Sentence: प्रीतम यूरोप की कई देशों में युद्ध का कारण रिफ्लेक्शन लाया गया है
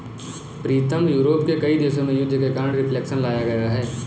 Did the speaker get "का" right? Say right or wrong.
wrong